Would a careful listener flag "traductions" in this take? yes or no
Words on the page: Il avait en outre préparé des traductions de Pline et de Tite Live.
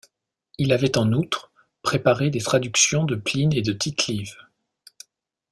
no